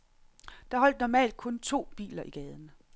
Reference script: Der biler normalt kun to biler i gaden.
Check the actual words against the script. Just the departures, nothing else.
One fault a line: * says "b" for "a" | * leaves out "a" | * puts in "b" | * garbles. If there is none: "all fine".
* says "holdt" for "biler"